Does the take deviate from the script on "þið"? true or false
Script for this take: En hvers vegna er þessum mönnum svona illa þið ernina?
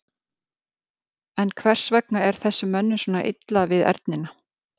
true